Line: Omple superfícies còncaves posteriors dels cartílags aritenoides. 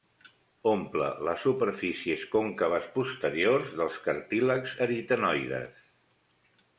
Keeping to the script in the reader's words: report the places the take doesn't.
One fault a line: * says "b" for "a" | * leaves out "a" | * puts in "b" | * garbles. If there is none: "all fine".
* puts in "les"